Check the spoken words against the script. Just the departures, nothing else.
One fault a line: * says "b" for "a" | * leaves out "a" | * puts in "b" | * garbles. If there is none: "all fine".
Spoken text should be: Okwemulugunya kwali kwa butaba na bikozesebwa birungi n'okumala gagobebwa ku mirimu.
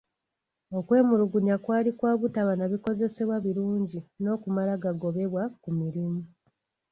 all fine